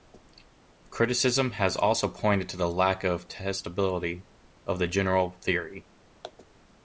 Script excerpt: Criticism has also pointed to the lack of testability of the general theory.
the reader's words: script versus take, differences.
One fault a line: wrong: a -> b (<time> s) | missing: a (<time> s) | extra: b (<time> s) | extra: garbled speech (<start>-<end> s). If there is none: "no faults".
no faults